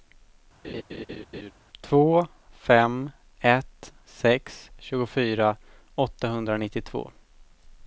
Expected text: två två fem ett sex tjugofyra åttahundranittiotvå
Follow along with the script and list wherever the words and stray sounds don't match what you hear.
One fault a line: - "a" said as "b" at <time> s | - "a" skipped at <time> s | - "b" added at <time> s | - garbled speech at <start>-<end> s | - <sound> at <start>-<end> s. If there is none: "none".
- laugh at 0.6-1.5 s
- "två" skipped at 2.3 s